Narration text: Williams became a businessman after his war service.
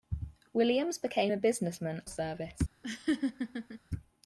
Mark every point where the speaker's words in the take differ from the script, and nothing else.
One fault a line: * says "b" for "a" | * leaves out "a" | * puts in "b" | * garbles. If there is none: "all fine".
* leaves out "after his war"